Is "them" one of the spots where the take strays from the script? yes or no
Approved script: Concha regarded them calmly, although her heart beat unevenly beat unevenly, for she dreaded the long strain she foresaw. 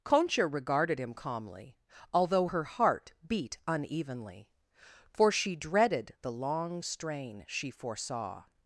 yes